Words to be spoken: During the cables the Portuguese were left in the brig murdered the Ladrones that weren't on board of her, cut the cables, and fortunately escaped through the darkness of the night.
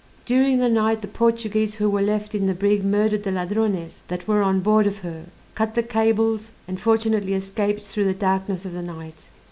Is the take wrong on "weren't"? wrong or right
wrong